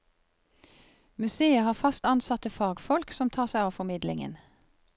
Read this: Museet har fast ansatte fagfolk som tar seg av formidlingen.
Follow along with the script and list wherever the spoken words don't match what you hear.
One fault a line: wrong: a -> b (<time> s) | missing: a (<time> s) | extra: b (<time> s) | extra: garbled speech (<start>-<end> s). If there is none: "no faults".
no faults